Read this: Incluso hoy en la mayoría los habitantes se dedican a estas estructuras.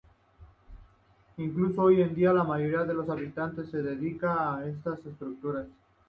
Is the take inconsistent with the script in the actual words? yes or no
yes